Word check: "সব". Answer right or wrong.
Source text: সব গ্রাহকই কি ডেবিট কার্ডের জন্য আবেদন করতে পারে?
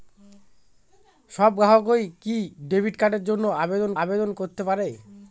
right